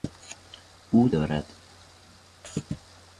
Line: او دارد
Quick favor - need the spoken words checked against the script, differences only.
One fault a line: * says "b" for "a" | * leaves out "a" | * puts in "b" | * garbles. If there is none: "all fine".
all fine